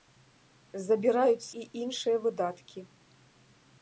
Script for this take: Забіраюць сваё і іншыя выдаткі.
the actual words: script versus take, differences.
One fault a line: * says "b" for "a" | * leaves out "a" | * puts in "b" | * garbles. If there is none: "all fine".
* leaves out "сваё"